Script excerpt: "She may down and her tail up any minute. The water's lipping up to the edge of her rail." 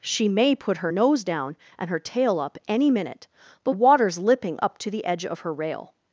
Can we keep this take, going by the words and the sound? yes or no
no